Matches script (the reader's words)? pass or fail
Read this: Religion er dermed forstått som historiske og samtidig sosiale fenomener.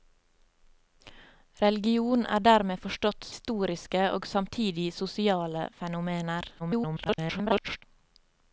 fail